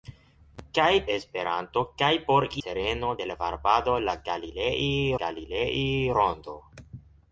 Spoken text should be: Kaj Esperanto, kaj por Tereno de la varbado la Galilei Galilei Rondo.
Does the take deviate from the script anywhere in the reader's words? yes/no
no